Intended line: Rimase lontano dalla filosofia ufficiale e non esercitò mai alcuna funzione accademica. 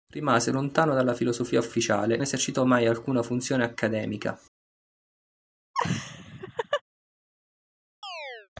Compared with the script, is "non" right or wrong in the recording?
wrong